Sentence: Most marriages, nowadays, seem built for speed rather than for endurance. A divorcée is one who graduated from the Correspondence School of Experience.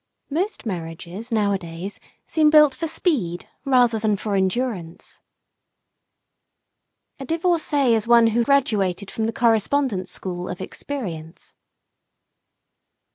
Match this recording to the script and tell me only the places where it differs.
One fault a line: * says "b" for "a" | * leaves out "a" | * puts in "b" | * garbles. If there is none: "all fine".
all fine